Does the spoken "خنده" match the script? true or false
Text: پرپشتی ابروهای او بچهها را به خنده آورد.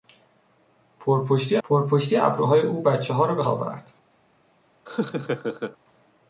false